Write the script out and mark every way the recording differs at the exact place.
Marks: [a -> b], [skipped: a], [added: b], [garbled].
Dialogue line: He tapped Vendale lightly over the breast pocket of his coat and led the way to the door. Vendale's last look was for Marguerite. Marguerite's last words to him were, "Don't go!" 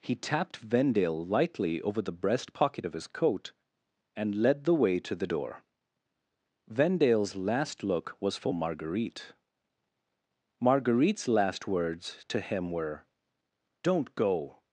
He tapped Vendale lightly over the breast pocket of his coat and led the way to the door. Vendale's last look was for Marguerite. Marguerite's last words to him were, "Don't go!"